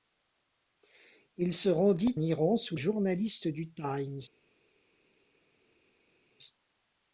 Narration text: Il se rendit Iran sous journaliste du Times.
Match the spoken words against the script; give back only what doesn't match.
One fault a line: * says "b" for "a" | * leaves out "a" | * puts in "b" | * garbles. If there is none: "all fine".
all fine